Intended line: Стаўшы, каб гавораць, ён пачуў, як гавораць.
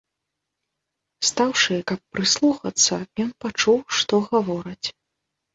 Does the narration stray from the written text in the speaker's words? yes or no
yes